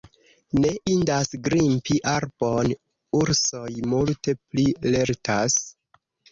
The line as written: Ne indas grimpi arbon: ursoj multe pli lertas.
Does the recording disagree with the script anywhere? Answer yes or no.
no